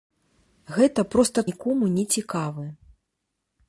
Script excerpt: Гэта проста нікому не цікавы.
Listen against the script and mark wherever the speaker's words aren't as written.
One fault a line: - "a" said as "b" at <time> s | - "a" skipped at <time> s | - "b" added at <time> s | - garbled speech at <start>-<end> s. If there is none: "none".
none